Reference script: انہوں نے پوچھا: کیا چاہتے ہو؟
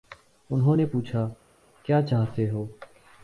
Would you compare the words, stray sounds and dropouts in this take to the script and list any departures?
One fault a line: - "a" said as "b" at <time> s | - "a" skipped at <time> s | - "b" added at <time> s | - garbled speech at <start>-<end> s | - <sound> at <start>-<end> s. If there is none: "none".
none